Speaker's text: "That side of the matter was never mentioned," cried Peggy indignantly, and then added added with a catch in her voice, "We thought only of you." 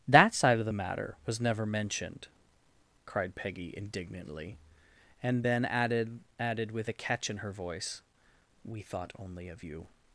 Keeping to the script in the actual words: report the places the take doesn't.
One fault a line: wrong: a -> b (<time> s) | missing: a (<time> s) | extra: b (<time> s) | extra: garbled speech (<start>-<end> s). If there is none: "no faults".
no faults